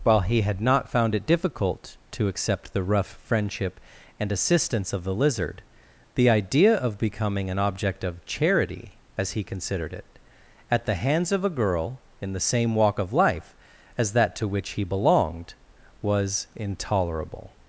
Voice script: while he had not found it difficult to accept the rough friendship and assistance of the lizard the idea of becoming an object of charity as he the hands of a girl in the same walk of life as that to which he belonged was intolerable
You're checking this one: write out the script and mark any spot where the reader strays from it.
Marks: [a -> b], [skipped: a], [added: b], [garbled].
while he had not found it difficult to accept the rough friendship and assistance of the lizard the idea of becoming an object of charity as he [added: considered it at] the hands of a girl in the same walk of life as that to which he belonged was intolerable